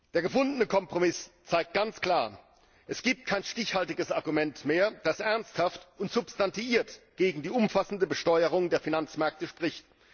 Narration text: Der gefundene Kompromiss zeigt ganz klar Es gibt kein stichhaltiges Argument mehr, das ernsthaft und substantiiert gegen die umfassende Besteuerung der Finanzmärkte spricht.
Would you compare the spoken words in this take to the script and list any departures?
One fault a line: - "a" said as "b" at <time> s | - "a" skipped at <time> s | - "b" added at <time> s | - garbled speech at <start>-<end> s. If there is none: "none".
none